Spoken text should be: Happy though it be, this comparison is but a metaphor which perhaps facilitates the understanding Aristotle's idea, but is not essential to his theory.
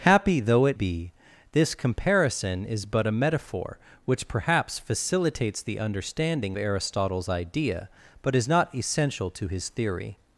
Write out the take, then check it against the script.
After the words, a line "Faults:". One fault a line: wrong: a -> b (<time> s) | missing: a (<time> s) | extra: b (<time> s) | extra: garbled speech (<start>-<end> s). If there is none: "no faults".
Happy though it be, this comparison is but a metaphor which perhaps facilitates the understanding Aristotle's idea, but is not essential to his theory.
Faults:
no faults